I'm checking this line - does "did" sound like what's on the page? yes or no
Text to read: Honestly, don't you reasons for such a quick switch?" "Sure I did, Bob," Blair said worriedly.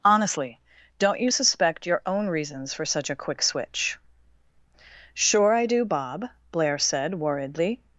no